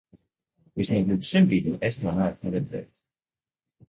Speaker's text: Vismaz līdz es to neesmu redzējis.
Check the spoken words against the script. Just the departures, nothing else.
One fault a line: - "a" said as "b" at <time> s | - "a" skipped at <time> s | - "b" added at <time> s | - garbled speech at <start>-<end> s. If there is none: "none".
- "šim brīdim" added at 1.3 s